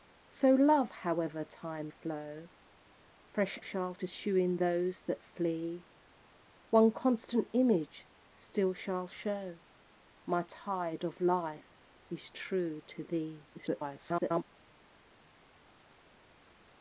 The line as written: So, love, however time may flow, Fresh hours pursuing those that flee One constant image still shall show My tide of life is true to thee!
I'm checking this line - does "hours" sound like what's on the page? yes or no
no